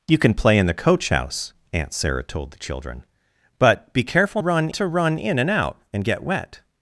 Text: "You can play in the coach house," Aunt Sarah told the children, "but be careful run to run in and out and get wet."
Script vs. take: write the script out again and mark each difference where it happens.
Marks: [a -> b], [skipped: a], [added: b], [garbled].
"You can play in the coach house," Aunt Sarah told the children, "but be careful run to run in and out and get wet."